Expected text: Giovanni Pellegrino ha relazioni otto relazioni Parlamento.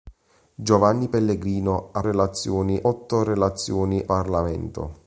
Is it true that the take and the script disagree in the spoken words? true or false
false